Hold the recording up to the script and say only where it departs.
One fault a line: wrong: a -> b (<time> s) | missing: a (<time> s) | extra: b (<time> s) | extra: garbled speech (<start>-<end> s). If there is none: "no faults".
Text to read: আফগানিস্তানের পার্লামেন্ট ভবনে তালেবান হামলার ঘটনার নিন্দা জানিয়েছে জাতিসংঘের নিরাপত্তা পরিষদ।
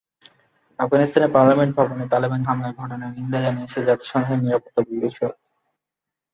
no faults